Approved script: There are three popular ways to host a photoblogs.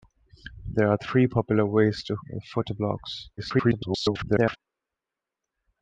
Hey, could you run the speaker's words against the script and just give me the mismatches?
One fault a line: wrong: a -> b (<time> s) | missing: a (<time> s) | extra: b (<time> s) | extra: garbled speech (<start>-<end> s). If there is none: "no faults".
missing: host (2.1 s)
extra: garbled speech (3.4-4.6 s)